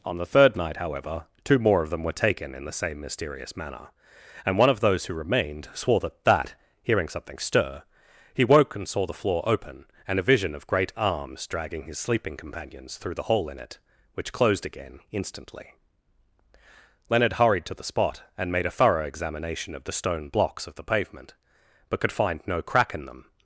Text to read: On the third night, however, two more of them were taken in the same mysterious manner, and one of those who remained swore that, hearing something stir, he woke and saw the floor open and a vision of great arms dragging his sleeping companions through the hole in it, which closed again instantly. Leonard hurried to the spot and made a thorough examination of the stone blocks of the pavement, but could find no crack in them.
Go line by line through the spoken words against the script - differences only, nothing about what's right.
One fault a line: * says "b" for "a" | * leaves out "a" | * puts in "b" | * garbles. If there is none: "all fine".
* puts in "that"